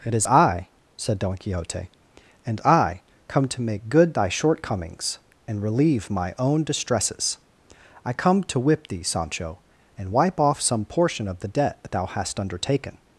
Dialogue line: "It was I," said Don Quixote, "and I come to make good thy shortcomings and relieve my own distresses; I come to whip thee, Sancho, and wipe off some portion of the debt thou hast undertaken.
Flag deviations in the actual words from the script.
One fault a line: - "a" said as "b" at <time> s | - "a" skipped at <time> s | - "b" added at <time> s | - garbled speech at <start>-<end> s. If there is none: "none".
- "was" said as "is" at 0.1 s